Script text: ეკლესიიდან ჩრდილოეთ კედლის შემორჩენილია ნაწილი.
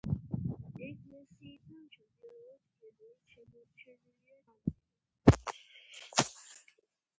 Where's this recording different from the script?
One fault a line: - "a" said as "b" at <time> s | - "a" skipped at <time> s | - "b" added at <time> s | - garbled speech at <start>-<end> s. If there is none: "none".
none